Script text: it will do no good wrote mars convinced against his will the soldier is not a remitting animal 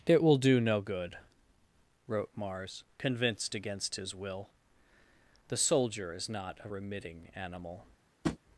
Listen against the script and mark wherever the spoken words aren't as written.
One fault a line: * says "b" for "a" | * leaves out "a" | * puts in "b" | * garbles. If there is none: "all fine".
all fine